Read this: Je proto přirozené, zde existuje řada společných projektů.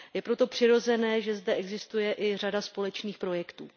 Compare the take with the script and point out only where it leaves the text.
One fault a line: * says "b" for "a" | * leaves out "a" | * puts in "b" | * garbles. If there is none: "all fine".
* puts in "že"
* puts in "i"